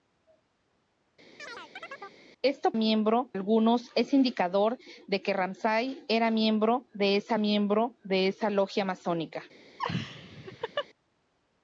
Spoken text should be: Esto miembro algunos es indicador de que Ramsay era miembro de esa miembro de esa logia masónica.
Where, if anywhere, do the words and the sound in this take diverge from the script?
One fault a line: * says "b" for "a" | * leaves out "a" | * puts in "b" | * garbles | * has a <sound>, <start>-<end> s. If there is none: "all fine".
* has a chirp, 1.4-2.2 s
* has a laugh, 9.8-10.9 s